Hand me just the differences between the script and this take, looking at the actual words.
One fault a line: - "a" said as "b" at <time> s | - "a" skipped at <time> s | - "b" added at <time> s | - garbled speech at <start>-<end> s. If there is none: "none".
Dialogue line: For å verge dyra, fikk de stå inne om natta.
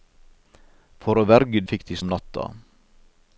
- "dyra" skipped at 1.6 s
- "stå inne" skipped at 2.0 s